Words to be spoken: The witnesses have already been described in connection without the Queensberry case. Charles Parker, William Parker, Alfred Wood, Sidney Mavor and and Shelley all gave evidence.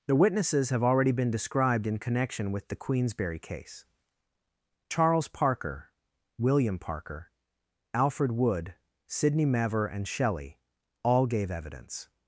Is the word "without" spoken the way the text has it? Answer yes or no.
no